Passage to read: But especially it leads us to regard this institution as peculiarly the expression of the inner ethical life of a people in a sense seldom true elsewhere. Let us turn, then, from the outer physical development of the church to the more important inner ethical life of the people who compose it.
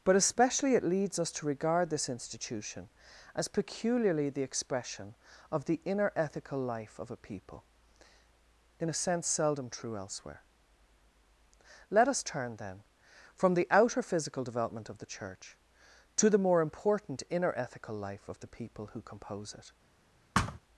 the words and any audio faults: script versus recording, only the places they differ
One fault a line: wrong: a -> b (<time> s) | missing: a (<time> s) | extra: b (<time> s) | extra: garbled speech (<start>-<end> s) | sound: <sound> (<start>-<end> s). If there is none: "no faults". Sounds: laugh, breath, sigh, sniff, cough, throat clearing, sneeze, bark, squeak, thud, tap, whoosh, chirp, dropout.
sound: thud (20.3-20.6 s)